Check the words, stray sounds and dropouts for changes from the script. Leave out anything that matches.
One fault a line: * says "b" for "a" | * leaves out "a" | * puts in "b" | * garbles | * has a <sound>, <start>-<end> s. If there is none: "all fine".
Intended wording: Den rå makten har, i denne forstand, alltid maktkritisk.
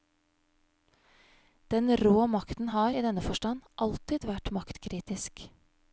* puts in "vært"